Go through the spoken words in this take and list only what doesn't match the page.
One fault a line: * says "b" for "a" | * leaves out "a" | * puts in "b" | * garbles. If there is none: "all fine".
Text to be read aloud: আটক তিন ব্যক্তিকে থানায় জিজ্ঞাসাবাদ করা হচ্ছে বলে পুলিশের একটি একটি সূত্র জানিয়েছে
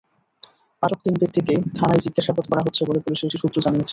* leaves out "একটি"